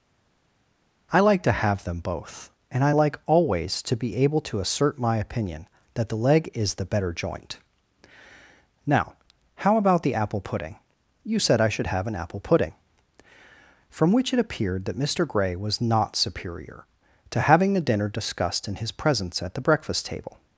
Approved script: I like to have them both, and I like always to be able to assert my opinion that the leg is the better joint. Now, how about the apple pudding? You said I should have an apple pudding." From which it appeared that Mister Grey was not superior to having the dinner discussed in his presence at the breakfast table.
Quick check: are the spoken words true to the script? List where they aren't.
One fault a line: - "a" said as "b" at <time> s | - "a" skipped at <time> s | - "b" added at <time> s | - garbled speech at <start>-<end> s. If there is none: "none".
none